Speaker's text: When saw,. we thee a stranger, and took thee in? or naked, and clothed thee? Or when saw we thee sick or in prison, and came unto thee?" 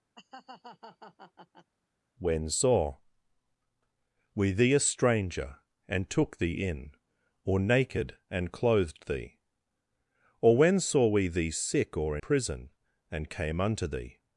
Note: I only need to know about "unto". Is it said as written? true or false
true